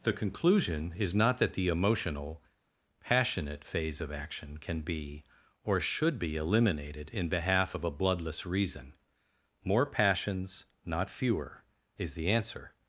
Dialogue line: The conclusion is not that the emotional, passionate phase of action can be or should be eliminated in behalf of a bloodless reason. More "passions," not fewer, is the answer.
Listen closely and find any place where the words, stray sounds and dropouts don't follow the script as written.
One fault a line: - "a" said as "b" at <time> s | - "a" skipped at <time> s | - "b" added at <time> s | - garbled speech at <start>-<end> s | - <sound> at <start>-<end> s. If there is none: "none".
none